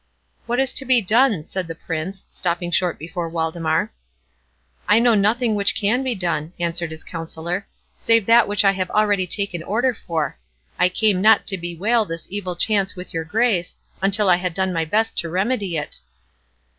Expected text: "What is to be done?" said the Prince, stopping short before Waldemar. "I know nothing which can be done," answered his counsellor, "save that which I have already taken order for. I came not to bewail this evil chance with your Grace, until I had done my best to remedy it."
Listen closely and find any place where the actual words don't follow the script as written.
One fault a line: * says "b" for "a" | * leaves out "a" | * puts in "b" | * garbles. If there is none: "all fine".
all fine